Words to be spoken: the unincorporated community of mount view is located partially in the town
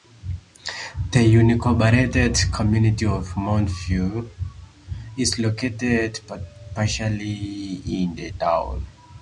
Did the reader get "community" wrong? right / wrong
right